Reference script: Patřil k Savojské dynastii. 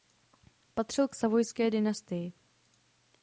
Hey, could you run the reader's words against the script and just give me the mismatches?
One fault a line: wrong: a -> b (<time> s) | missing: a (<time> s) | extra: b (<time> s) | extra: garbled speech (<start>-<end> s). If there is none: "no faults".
no faults